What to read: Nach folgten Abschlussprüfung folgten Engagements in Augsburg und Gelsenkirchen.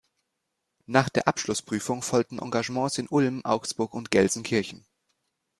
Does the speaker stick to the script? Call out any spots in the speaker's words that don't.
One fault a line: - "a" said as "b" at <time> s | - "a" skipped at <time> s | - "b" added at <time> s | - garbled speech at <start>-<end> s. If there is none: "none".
- "folgten" said as "der" at 1.1 s
- "Ulm" added at 3.1 s